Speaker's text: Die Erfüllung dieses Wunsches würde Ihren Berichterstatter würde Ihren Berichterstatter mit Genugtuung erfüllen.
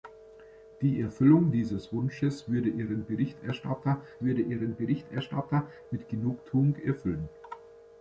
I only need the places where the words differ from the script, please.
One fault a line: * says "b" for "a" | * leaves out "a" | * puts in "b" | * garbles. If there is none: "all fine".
all fine